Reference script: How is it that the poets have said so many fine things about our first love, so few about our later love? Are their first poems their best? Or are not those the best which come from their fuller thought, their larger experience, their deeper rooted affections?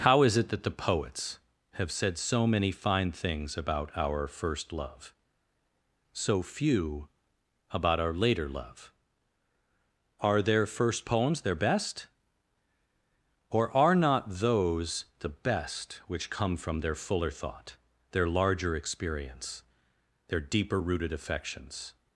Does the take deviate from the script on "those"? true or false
false